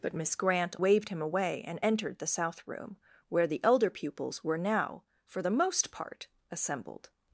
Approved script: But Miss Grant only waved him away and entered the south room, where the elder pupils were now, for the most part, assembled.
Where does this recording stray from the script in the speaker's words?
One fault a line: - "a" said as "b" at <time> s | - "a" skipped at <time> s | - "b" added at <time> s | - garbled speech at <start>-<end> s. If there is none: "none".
- "only" skipped at 0.8 s